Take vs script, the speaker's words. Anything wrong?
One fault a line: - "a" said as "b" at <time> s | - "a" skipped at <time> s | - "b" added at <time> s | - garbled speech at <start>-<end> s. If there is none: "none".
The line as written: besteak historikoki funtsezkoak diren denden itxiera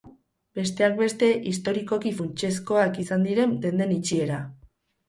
- "beste" added at 1.0 s
- "izan" added at 3.0 s